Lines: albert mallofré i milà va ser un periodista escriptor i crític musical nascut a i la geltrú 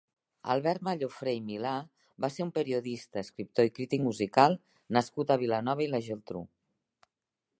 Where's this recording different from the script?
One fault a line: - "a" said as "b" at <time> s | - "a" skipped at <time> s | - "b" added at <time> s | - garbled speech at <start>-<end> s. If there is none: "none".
- "vilanova" added at 5.4 s